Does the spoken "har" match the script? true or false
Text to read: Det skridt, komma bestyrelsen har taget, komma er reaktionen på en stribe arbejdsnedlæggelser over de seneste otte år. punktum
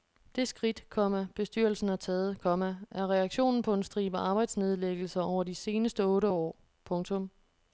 true